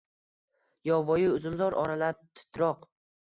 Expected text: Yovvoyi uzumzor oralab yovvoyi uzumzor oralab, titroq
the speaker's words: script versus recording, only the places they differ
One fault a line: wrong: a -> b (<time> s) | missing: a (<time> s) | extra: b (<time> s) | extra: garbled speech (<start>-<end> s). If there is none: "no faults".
missing: yovvoyi uzumzor oralab (2.2 s)